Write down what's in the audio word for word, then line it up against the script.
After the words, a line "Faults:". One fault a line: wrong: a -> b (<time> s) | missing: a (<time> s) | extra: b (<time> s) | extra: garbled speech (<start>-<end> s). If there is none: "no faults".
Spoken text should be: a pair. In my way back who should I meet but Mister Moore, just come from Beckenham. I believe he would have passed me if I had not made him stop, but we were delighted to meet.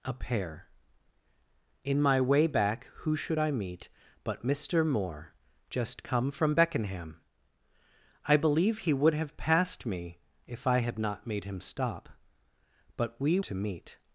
a pair. In my way back who should I meet but Mister Moore, just come from Beckenham. I believe he would have passed me if I had not made him stop, but we to meet.
Faults:
missing: were delighted (13.4 s)